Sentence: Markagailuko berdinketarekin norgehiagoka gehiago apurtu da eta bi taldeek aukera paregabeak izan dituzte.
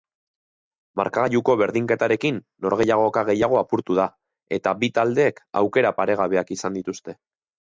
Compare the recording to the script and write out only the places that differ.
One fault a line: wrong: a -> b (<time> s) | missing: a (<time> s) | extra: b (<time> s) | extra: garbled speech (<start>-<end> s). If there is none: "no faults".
no faults